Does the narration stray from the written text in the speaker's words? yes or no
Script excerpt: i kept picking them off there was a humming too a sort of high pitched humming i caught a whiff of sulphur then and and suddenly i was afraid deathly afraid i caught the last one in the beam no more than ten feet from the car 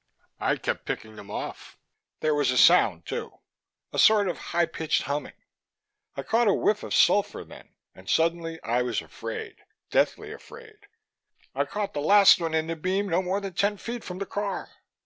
yes